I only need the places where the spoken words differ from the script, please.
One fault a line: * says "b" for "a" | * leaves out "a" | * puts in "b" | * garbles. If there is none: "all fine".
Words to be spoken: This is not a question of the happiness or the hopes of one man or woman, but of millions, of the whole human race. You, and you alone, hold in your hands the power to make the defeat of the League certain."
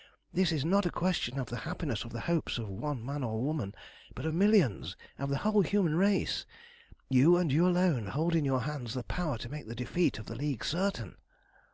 all fine